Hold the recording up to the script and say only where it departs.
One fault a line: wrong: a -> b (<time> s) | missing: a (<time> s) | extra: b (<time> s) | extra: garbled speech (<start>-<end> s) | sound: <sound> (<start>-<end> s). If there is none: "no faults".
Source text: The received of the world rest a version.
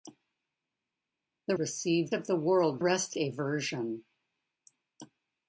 no faults